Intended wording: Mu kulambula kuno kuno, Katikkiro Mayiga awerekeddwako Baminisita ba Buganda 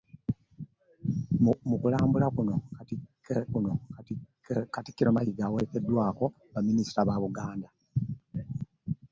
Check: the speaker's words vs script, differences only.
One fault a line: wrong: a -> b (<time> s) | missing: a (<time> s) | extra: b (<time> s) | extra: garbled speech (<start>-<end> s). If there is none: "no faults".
no faults